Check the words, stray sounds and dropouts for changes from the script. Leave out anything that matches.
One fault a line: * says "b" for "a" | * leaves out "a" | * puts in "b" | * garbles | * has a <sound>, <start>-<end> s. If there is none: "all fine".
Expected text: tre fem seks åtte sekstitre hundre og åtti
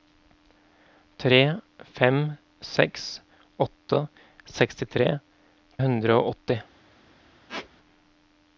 * has a squeak, 7.5-7.7 s